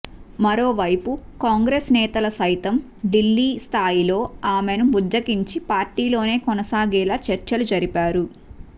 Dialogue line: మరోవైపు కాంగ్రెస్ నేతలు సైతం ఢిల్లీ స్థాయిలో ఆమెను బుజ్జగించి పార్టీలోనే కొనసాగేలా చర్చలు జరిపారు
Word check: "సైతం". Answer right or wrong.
right